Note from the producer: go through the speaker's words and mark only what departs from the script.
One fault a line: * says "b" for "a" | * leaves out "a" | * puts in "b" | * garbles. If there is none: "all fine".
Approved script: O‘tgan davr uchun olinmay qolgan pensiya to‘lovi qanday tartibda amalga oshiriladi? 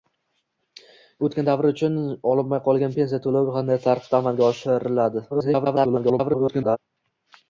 * garbles